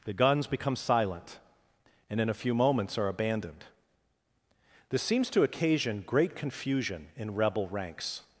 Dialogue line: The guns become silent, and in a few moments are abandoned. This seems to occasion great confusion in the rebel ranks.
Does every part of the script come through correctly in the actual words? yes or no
no